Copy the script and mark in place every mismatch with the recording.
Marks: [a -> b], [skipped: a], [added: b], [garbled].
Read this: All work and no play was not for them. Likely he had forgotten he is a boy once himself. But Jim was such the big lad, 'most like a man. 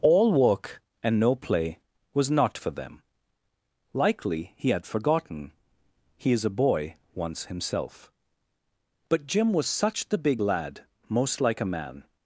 All work and no play was not for them. Likely he had forgotten he is a boy once himself. But Jim was such the big lad, 'most like a man.